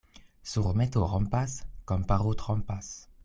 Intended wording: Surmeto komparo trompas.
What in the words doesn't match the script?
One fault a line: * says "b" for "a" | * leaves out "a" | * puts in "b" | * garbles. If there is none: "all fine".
* puts in "rompas"